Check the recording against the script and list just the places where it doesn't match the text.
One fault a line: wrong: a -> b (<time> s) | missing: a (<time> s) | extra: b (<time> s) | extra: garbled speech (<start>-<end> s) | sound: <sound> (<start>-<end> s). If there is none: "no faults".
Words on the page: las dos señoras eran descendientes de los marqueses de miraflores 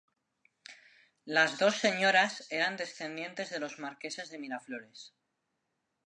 no faults